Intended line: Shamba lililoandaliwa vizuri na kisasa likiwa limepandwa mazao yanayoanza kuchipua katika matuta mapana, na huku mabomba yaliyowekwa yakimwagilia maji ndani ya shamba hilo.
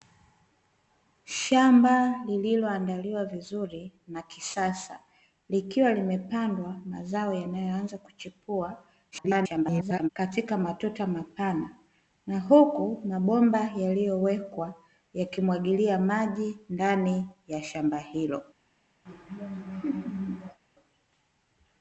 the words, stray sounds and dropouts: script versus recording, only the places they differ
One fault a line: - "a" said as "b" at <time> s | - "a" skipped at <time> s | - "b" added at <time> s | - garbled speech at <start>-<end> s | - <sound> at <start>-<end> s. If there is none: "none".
- garbled speech at 9.1-10.1 s
- laugh at 19.1-20.6 s